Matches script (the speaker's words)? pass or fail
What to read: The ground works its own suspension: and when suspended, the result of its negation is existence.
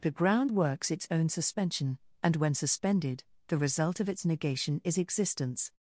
pass